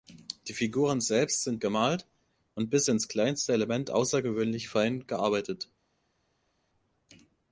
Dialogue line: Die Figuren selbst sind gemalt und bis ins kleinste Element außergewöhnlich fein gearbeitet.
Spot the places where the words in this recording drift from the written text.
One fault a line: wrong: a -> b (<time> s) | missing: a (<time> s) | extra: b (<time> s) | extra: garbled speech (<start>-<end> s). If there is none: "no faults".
no faults